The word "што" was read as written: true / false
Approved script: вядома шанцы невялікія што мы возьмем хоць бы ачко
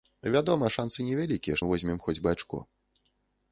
false